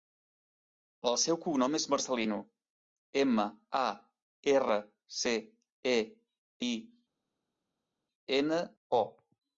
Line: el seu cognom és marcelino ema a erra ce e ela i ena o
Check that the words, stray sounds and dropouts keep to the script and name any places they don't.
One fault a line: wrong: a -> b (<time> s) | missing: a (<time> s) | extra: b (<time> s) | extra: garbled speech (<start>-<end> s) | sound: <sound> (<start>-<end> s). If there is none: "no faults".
missing: ela (6.0 s)